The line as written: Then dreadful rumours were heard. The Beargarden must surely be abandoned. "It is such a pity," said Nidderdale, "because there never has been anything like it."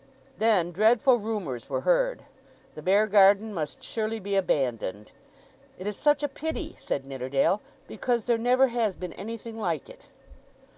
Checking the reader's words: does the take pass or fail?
pass